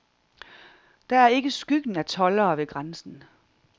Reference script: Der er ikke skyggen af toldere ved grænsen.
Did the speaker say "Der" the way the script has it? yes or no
yes